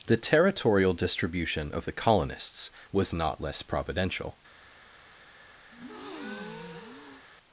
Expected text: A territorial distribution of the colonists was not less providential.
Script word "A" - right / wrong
wrong